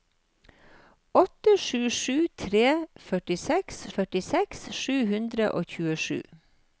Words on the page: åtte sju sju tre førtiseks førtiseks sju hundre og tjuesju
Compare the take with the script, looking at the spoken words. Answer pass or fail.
pass